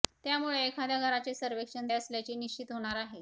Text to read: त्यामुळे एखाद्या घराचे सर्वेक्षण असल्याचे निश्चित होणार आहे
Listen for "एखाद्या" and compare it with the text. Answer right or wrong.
right